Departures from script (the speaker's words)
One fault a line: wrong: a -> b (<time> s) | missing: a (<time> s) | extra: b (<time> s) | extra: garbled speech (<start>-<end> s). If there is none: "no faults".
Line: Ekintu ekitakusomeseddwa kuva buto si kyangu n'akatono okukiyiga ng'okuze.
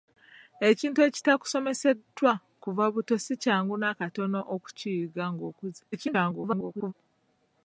extra: garbled speech (5.9-6.9 s)